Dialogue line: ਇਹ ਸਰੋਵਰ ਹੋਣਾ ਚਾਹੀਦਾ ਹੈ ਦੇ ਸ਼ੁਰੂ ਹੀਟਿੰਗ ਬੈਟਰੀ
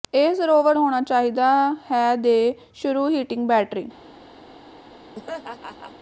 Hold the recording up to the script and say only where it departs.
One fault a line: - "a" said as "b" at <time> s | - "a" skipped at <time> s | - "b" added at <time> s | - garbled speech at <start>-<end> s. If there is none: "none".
none